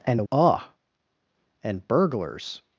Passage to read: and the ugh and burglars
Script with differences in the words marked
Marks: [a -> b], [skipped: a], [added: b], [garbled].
and the ugh and burglars